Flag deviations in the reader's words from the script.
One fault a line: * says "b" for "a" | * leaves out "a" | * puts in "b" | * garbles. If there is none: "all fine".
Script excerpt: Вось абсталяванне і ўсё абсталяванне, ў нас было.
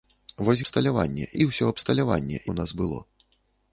all fine